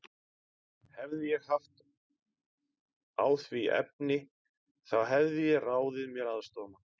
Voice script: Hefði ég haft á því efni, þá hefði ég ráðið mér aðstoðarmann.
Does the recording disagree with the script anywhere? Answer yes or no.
no